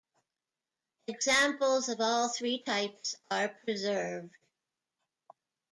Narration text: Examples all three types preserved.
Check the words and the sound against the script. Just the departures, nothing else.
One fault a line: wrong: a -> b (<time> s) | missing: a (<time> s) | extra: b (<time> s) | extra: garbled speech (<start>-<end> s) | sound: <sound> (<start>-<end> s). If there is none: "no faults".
extra: of (1.9 s)
extra: are (3.3 s)